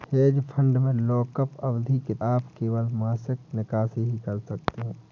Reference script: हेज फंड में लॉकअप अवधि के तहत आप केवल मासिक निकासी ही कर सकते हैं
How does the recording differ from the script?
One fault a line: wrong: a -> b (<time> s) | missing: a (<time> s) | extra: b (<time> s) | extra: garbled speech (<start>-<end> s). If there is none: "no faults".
missing: तहत (2.1 s)